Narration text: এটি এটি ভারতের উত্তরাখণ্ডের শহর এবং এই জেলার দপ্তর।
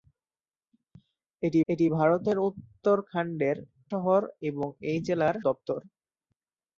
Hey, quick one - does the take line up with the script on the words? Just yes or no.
yes